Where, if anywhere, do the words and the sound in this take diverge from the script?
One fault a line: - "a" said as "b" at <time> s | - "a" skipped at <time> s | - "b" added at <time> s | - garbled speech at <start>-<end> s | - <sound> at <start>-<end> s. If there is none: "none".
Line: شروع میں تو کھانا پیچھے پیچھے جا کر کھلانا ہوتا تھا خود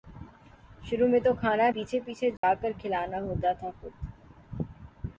- dropout at 2.4-2.4 s